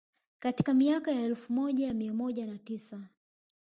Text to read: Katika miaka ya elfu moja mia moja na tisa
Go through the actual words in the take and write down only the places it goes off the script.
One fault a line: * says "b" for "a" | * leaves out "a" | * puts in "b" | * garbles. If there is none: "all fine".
all fine